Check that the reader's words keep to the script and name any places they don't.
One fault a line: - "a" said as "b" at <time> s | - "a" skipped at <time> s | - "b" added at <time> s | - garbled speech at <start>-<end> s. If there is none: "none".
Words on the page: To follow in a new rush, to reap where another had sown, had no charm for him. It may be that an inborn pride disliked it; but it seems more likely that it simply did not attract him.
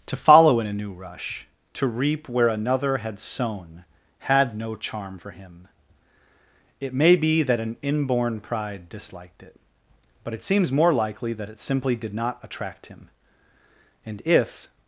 - "And if" added at 14.1 s